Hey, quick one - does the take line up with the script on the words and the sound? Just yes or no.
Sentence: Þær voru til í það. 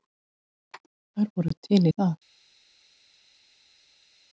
yes